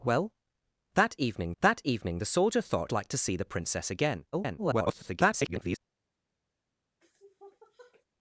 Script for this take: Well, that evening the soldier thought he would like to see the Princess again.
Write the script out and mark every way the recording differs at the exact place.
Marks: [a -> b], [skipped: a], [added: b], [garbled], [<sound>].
Well, that evening [added: that evening] the soldier thought [skipped: he would] like to see the Princess again. [garbled] [sniff]